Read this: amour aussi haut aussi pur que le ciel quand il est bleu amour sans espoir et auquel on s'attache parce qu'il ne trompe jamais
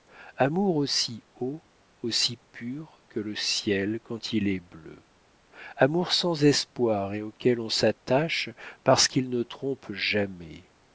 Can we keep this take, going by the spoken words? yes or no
yes